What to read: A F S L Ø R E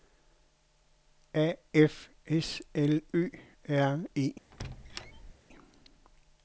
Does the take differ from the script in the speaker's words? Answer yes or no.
no